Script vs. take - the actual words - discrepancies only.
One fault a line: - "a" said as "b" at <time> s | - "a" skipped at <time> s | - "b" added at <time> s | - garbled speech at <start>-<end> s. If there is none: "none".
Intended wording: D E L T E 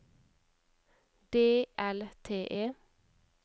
- "E" skipped at 1.7 s